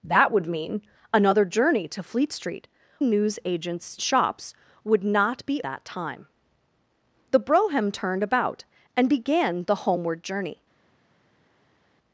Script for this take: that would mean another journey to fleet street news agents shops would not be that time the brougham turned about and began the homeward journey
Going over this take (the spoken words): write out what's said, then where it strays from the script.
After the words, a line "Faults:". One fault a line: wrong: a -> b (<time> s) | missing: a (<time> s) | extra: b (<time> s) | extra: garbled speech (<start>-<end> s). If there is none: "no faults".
that would mean another journey to fleet street news agents shops would not be that time the brougham turned about and began the homeward journey
Faults:
no faults